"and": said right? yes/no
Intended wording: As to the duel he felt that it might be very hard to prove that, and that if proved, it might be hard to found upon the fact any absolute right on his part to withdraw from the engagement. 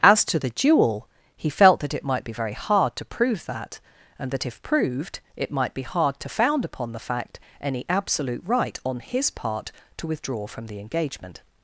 yes